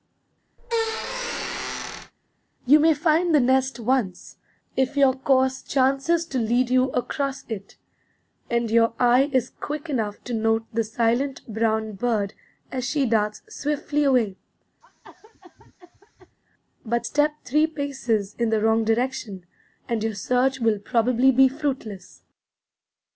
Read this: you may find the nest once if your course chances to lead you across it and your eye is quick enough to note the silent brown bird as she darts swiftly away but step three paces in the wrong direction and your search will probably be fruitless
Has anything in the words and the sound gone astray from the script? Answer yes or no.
yes